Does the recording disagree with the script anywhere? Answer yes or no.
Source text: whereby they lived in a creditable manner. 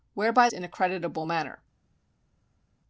yes